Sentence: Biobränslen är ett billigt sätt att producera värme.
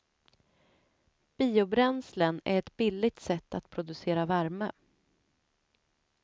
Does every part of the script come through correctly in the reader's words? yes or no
yes